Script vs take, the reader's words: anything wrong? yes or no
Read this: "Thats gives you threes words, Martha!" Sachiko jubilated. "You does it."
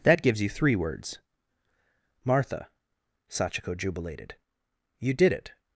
yes